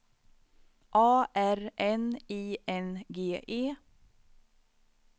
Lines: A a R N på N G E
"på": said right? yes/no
no